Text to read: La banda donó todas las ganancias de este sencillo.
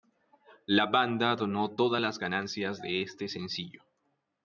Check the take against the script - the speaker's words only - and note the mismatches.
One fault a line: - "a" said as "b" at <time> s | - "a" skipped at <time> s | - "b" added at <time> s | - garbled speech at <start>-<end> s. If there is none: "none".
none